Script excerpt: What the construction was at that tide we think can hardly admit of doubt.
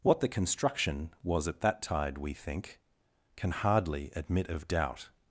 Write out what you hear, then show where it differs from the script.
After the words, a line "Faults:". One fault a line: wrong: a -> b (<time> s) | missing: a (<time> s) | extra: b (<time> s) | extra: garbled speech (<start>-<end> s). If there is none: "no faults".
What the construction was at that tide we think can hardly admit of doubt.
Faults:
no faults